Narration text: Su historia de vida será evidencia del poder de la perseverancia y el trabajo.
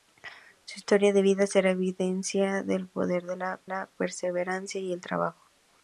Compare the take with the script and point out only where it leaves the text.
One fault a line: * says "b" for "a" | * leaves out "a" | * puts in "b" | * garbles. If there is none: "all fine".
* puts in "la"